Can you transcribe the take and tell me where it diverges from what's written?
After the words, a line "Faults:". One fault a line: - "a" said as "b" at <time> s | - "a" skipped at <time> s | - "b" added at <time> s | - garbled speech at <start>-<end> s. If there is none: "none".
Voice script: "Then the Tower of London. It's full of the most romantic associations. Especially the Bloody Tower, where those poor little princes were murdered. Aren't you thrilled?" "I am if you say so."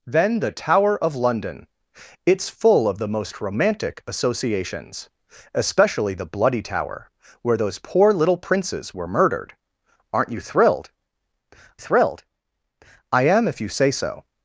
"Then the Tower of London. It's full of the most romantic associations. Especially the Bloody Tower, where those poor little princes were murdered. Aren't you thrilled thrilled?" "I am if you say so."
Faults:
- "thrilled" added at 11.8 s